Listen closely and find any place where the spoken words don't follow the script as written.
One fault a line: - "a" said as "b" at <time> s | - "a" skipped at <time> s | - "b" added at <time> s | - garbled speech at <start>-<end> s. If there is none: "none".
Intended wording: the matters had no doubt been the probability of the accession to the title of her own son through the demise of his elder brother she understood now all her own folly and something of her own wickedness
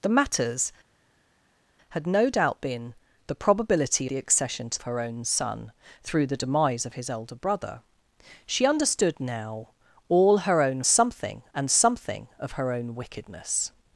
- "of" skipped at 4.1 s
- "the title of" skipped at 4.8 s
- "folly" said as "something" at 10.9 s